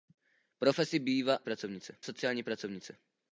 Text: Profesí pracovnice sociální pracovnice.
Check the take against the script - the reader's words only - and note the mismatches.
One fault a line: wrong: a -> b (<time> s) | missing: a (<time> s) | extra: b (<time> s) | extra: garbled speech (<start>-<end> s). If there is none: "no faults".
no faults